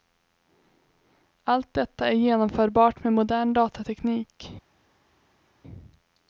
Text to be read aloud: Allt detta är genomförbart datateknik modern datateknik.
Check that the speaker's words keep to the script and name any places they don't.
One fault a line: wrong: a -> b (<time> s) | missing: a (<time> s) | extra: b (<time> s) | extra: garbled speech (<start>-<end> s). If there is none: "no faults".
wrong: datateknik -> med (3.0 s)